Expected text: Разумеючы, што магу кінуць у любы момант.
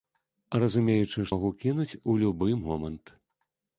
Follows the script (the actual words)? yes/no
no